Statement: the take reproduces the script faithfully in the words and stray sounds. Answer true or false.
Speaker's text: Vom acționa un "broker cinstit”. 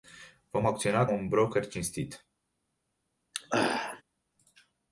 false